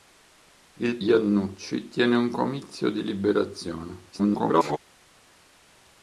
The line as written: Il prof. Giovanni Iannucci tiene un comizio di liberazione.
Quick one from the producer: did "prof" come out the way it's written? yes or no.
no